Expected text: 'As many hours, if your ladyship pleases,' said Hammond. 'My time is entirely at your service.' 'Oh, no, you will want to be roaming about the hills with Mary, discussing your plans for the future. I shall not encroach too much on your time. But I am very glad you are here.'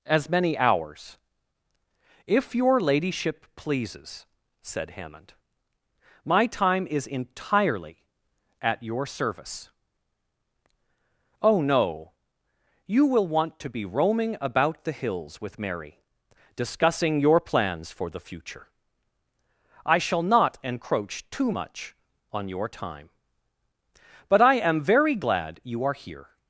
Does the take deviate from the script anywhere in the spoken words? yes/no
no